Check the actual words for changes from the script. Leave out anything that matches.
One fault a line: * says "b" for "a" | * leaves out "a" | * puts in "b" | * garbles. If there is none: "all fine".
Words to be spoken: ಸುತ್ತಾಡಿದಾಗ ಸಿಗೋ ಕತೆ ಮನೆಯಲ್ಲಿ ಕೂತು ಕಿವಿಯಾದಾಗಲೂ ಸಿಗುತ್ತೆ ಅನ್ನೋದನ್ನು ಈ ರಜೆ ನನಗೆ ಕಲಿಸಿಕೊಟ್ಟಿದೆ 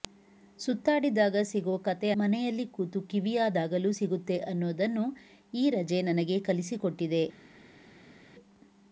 all fine